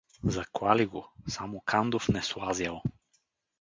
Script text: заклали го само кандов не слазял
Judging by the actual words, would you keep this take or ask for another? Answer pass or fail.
pass